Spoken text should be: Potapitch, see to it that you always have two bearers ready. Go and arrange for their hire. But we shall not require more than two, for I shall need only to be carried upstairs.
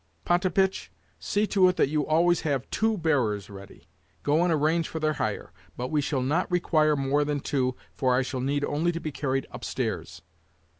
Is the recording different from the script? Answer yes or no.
no